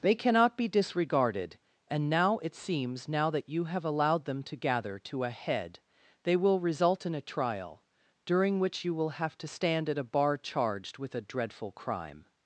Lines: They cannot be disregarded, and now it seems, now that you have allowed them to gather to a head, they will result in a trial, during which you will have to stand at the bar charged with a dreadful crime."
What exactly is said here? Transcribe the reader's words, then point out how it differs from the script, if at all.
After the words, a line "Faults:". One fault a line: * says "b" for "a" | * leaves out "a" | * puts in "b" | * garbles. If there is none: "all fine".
They cannot be disregarded, and now it seems, now that you have allowed them to gather to a head, they will result in a trial, during which you will have to stand at a bar charged with a dreadful crime."
Faults:
* says "a" for "the"